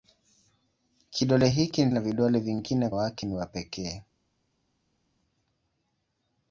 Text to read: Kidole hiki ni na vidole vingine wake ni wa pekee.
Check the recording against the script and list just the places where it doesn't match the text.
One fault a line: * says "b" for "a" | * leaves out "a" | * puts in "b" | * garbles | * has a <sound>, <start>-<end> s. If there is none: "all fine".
all fine